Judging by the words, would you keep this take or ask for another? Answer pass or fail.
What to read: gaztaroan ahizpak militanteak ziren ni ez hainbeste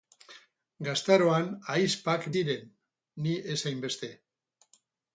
fail